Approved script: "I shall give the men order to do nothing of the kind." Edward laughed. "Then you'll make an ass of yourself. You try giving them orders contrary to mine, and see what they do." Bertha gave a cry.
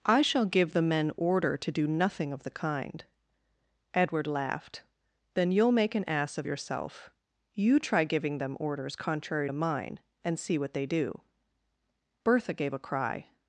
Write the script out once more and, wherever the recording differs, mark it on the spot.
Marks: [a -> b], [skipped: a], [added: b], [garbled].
"I shall give the men order to do nothing of the kind." Edward laughed. "Then you'll make an ass of yourself. You try giving them orders contrary to mine, and see what they do." Bertha gave a cry.